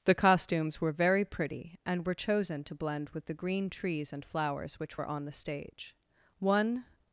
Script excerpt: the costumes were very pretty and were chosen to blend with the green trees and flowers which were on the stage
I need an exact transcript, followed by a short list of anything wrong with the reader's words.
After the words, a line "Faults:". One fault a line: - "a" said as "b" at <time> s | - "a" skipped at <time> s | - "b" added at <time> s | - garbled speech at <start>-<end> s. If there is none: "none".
the costumes were very pretty and were chosen to blend with the green trees and flowers which were on the stage one
Faults:
- "one" added at 6.4 s